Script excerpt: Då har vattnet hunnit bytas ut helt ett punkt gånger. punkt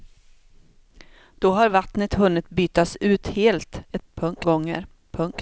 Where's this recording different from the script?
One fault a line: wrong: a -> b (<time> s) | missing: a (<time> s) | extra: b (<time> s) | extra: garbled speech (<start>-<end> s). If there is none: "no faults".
no faults